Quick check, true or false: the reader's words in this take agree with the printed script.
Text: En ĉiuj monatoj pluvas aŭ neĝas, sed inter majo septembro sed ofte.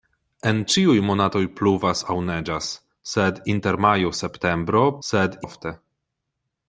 true